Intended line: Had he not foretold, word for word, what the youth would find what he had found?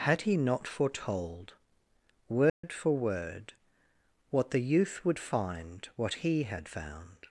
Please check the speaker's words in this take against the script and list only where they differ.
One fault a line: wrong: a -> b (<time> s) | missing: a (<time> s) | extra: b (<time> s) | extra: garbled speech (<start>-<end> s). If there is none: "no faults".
no faults